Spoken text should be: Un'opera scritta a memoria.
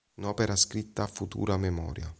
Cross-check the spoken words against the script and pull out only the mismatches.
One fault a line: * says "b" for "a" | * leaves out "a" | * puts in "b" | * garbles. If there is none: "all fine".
* puts in "futura"